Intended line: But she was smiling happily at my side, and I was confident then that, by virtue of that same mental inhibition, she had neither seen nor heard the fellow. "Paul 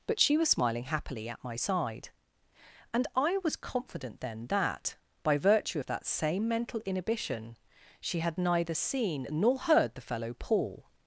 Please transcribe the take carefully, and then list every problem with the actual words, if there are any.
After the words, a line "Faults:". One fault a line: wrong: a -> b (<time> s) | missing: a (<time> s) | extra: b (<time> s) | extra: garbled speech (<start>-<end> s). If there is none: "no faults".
But she was smiling happily at my side, and I was confident then that, by virtue of that same mental inhibition, she had neither seen nor heard the fellow. "Paul
Faults:
no faults